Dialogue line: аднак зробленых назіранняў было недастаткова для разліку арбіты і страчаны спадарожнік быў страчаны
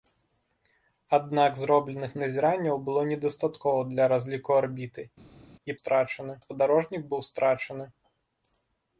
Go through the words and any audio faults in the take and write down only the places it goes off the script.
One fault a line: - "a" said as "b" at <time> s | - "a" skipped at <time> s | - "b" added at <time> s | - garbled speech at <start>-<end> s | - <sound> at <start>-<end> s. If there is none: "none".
none